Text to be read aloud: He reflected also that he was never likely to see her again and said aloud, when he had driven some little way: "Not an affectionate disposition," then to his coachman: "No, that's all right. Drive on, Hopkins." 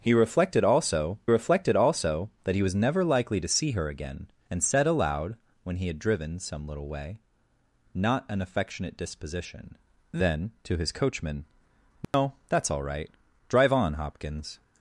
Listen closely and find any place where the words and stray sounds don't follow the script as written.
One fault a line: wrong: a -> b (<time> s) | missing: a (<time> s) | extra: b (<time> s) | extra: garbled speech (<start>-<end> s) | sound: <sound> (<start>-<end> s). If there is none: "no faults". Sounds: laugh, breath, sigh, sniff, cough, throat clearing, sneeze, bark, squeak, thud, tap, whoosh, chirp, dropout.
extra: reflected also (1.3 s)
sound: dropout (12.0-12.1 s)